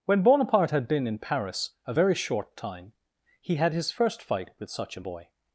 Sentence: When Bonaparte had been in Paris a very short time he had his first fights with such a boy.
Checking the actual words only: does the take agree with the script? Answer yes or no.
no